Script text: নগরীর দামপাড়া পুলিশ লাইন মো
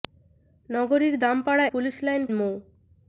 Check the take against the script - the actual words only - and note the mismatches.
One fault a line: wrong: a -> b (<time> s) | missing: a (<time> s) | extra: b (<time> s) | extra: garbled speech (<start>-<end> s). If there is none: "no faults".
no faults